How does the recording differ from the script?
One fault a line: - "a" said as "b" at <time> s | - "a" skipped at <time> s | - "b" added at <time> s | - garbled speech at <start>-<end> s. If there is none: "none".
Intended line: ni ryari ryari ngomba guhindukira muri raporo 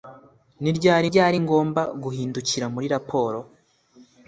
none